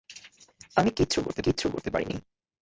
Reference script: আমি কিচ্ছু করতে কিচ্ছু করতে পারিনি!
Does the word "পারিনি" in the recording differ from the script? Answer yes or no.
no